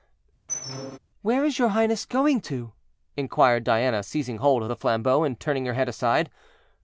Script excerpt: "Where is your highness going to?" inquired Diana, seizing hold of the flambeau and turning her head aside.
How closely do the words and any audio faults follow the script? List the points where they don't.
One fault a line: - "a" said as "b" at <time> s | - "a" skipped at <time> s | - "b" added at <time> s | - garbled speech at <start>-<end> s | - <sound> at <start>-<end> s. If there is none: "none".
- squeak at 0.5-1.0 s